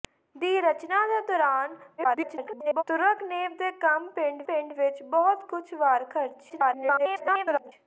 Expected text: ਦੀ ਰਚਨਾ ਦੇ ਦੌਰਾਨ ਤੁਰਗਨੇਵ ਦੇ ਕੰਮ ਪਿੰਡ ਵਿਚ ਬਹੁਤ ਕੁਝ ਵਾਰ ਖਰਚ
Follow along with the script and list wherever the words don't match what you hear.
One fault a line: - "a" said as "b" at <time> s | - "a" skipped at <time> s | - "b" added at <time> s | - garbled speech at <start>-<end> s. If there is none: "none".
- garbled speech at 2.0-2.8 s
- "ਪਿੰਡ" added at 4.4 s
- garbled speech at 6.5-7.7 s